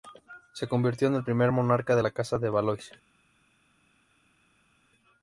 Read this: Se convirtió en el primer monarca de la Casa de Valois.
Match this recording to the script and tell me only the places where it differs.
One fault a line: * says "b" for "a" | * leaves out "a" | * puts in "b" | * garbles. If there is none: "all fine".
all fine